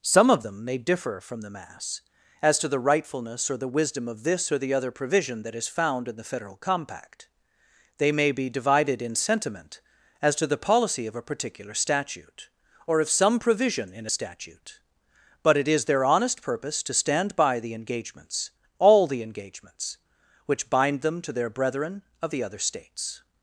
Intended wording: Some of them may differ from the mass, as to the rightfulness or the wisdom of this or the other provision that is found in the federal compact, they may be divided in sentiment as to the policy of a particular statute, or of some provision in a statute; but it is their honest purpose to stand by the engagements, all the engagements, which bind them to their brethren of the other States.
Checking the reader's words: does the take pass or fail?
pass